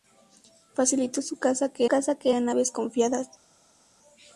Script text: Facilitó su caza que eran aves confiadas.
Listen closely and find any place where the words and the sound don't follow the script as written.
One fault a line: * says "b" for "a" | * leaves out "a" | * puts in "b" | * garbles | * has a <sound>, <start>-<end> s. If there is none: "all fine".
* puts in "caza que"